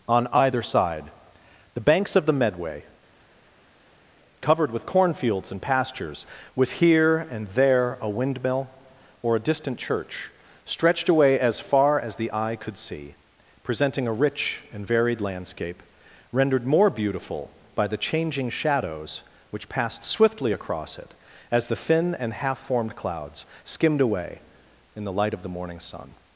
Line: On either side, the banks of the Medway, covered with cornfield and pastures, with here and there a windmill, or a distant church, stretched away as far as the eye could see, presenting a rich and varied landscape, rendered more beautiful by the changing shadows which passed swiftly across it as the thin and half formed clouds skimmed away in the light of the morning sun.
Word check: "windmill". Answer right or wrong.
right